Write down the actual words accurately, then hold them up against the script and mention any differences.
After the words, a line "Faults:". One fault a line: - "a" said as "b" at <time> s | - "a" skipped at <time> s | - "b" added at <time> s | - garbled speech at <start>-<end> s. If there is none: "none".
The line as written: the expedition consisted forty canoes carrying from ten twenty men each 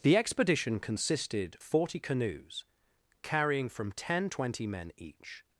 the expedition consisted forty canoes carrying from ten twenty men each
Faults:
none